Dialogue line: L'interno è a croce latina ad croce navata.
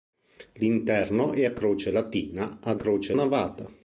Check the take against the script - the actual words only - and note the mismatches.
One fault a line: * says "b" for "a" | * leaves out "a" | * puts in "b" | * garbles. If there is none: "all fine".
all fine